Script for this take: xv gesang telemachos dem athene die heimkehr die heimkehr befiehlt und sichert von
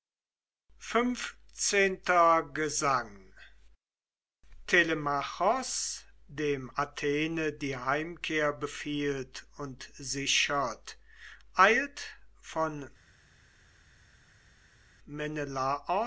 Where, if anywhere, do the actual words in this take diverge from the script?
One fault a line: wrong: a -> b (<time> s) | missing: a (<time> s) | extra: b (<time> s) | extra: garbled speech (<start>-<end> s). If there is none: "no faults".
missing: die heimkehr (8.5 s)
extra: eilt (11.6 s)